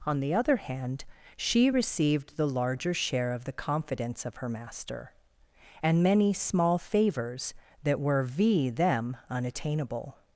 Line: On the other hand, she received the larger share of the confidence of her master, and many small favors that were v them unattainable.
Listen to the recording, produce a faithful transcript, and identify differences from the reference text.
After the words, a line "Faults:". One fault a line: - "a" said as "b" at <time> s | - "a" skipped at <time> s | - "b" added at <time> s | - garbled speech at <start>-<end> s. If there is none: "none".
On the other hand, she received the larger share of the confidence of her master, and many small favors that were v them unattainable.
Faults:
none